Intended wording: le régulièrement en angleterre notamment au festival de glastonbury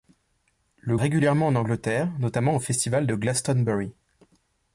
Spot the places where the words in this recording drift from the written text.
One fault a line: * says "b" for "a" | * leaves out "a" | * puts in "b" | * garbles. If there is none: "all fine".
all fine